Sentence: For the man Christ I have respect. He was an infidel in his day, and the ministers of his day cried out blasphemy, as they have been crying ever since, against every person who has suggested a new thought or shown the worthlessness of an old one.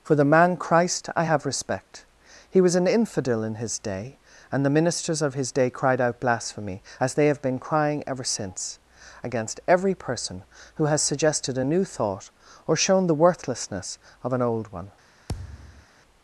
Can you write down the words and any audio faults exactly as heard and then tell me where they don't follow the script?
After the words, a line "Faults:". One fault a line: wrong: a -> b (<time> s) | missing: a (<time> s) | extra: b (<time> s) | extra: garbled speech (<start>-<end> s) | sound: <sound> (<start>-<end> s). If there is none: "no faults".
For the man Christ I have respect. He was an infidel in his day, and the ministers of his day cried out blasphemy, as they have been crying ever since, against every person who has suggested a new thought or shown the worthlessness of an old one.
Faults:
sound: thud (15.3-15.9 s)